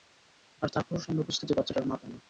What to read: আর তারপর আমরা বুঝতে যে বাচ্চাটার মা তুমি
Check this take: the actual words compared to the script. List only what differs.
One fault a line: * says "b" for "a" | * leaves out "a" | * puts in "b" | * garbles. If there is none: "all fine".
all fine